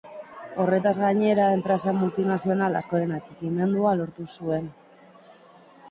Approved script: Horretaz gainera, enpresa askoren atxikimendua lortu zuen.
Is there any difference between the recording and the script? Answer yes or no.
yes